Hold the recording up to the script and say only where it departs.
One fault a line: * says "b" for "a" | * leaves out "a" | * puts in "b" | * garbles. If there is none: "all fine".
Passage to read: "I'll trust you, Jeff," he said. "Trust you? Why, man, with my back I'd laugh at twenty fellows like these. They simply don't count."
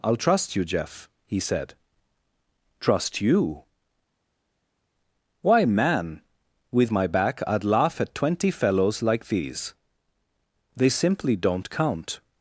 all fine